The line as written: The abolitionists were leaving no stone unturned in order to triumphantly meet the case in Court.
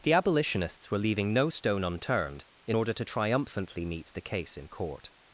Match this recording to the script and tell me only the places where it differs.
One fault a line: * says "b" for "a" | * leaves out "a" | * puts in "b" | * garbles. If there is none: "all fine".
all fine